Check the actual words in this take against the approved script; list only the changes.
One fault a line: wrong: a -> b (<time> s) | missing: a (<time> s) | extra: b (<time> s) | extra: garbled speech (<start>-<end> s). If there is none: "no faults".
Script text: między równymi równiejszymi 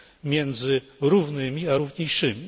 extra: a (1.7 s)